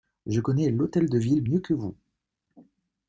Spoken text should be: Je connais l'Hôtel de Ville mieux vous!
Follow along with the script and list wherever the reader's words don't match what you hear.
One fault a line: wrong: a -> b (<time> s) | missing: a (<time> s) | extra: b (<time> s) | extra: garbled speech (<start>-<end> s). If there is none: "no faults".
extra: que (1.6 s)